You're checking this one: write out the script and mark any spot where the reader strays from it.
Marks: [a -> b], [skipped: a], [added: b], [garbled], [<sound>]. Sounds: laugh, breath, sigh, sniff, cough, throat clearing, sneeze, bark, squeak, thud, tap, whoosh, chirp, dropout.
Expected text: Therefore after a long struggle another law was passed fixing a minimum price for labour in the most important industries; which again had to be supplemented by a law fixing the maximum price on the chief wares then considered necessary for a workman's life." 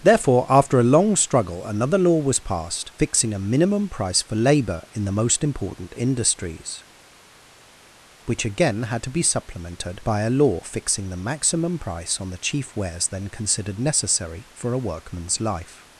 Therefore after a long struggle another law was passed fixing a minimum price for labour in the most important industries; which again had to be supplemented by a law fixing the maximum price on the chief wares then considered necessary for a workman's life."